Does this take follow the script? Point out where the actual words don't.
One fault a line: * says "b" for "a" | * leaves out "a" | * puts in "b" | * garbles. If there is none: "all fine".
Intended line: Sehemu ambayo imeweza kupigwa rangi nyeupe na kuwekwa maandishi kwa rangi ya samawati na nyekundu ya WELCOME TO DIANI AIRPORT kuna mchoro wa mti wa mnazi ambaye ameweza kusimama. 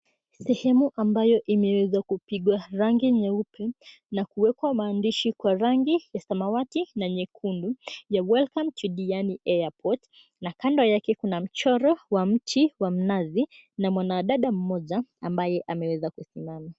* puts in "na kando yake"
* puts in "na mwanadada mmoja"